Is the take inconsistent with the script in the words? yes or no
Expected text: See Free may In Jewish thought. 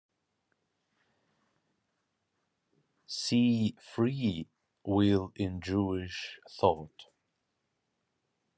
yes